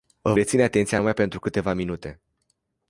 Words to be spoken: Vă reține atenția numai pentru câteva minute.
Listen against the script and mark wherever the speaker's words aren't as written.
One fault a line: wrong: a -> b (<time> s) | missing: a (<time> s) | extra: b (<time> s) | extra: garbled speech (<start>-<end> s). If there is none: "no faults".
no faults